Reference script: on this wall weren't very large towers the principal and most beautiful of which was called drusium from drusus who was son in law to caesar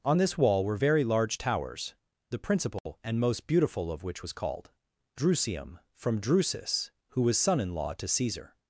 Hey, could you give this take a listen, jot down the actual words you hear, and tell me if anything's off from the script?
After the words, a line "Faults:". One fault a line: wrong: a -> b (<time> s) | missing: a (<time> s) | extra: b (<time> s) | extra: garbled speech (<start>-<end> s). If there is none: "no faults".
on this wall were very large towers the principal and most beautiful of which was called drusium from drusus who was son in law to caesar
Faults:
wrong: weren't -> were (0.7 s)